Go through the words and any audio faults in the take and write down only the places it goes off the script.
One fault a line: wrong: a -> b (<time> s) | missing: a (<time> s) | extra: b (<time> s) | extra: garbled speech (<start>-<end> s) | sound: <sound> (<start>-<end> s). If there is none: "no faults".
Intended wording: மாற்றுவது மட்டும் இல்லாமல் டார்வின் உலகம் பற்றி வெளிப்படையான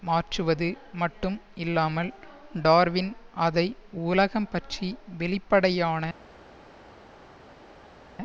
extra: அதை (3.4 s)